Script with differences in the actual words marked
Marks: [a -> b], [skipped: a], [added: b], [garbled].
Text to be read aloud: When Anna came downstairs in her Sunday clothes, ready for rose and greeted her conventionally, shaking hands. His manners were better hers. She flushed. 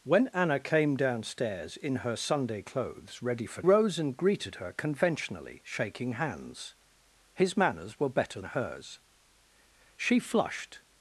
When Anna came downstairs in her Sunday clothes, ready for rose and greeted her conventionally, shaking hands. His manners were better hers. She flushed.